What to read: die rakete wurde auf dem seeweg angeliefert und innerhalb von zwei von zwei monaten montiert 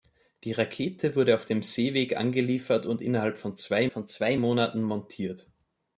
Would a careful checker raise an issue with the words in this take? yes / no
no